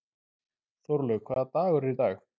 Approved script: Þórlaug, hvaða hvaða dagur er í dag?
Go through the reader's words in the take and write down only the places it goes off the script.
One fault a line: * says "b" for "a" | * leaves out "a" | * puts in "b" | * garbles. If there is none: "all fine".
* leaves out "hvaða"